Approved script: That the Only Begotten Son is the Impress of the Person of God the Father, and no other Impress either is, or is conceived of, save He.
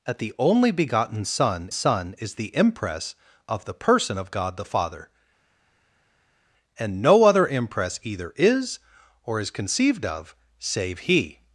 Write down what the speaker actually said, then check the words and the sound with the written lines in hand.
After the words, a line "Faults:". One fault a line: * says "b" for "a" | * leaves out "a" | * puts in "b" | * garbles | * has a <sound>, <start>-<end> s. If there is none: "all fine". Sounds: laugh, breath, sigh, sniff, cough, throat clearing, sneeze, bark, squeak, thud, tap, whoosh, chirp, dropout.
That the Only Begotten Son Son is the Impress of the Person of God the Father, and no other Impress either is, or is conceived of, save He.
Faults:
* puts in "Son"